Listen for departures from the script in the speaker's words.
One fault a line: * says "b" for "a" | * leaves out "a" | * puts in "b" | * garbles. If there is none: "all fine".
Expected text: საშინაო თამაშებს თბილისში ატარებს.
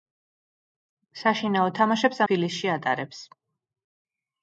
all fine